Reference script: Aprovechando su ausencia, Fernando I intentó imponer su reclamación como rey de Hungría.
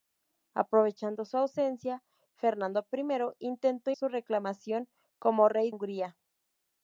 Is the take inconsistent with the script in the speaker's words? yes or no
yes